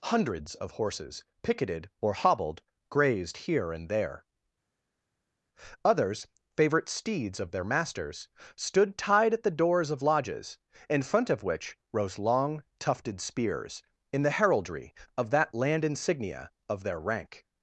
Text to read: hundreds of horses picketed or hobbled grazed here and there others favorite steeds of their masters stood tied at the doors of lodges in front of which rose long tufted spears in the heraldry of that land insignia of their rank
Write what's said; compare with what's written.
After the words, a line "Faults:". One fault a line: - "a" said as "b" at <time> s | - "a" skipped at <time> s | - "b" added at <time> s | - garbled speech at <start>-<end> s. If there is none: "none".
hundreds of horses picketed or hobbled grazed here and there others favorite steeds of their masters stood tied at the doors of lodges in front of which rose long tufted spears in the heraldry of that land insignia of their rank
Faults:
none